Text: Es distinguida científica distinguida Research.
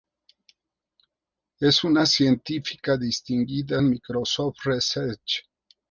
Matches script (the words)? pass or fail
fail